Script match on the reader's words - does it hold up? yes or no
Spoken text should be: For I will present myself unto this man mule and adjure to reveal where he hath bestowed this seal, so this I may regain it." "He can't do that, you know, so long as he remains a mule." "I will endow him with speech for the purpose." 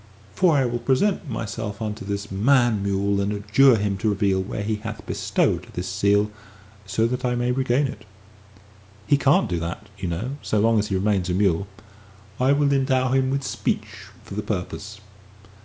no